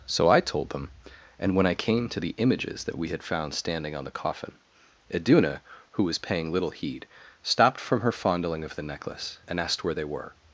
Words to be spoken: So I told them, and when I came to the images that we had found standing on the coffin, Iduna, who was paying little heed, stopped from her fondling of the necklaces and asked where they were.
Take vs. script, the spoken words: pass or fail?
fail